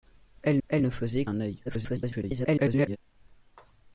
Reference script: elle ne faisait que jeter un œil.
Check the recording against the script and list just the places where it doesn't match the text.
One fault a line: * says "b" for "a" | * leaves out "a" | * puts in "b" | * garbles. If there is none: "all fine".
* puts in "elle"
* leaves out "que jeter"
* garbles